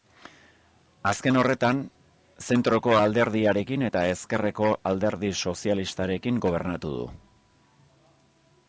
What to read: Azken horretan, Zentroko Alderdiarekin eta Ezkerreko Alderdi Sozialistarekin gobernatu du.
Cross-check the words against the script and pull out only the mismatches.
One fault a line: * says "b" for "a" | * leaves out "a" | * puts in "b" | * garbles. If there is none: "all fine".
all fine